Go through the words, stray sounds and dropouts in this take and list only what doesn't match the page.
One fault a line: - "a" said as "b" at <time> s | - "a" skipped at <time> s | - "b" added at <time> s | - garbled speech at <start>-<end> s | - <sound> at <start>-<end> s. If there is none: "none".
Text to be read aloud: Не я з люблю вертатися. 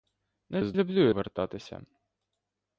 none